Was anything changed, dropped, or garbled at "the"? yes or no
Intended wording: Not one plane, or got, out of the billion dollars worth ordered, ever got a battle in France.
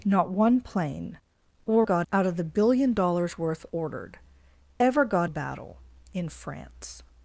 no